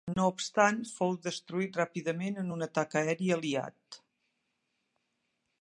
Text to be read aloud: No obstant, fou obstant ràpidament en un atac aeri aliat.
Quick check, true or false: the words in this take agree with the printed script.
false